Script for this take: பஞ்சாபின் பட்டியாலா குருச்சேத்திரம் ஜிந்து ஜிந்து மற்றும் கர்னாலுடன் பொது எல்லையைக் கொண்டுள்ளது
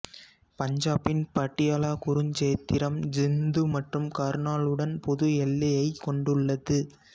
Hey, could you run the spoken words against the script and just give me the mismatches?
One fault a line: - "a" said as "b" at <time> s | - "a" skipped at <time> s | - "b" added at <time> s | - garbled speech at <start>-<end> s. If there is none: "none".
- "ஜிந்து" skipped at 3.6 s